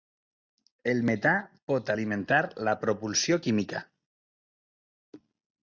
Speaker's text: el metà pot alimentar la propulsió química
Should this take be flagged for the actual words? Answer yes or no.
no